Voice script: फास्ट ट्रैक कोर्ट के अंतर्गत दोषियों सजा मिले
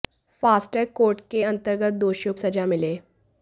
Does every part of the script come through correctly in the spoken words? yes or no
yes